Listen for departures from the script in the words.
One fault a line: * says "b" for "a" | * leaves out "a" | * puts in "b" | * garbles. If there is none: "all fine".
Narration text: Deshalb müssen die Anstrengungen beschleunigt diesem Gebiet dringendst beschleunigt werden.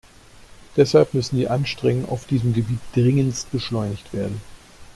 * says "auf" for "beschleunigt"